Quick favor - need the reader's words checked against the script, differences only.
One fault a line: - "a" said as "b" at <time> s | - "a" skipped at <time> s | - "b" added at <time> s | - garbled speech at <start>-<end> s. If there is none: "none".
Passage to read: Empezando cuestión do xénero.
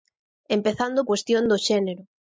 none